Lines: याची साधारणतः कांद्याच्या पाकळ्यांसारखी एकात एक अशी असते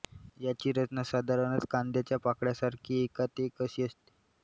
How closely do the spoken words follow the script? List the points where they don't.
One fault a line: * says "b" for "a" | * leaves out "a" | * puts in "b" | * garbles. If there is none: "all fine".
* puts in "रचना"